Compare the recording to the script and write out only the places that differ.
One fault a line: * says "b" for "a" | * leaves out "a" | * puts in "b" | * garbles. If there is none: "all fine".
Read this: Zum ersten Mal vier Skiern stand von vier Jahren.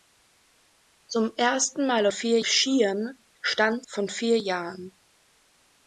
all fine